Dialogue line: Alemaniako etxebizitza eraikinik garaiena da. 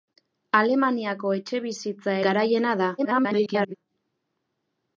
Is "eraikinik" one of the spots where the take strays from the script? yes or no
yes